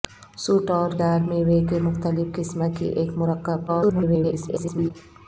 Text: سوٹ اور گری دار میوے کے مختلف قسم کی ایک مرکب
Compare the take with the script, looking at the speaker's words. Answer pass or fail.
fail